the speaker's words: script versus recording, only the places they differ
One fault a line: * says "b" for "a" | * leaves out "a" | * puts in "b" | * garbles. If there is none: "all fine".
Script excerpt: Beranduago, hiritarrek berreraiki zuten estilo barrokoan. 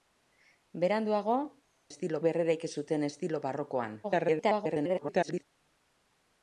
* says "estilo" for "hiritarrek"
* garbles